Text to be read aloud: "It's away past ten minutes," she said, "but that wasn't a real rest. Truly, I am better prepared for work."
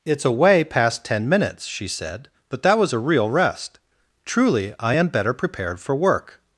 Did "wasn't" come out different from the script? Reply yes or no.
yes